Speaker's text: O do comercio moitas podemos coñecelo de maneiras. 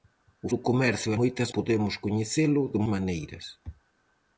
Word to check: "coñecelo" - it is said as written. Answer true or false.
true